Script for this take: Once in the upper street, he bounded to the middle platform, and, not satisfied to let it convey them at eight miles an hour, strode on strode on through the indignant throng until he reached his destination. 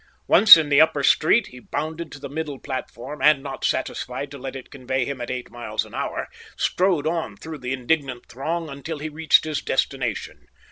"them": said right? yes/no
no